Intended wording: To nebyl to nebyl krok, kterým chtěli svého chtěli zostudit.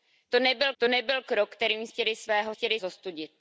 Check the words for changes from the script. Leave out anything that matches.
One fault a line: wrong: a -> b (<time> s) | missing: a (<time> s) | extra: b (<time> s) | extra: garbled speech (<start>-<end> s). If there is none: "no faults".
no faults